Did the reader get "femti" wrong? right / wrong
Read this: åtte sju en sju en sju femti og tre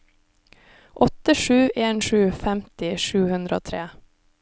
wrong